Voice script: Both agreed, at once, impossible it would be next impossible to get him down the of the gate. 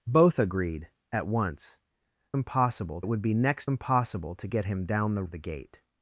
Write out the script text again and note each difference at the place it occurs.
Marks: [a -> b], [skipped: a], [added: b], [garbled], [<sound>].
Both agreed, at once, impossible it would be next impossible to get him down the of the gate.